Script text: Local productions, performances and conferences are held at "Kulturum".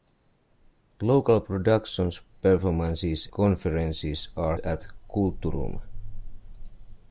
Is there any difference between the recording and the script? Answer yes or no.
yes